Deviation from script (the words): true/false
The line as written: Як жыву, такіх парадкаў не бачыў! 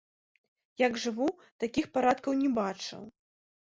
false